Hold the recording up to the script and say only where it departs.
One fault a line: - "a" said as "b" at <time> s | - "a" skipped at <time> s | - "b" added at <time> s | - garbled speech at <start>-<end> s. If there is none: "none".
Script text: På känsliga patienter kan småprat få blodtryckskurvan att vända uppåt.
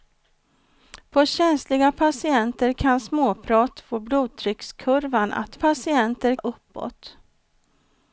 - "vända" said as "patienter" at 5.5 s